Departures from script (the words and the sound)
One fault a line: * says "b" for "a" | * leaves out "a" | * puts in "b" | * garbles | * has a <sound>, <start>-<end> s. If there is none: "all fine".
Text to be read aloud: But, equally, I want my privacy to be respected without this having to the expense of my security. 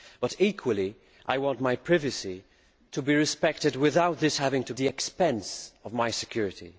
all fine